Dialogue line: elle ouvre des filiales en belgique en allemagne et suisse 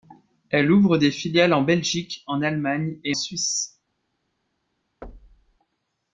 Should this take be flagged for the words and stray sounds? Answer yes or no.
yes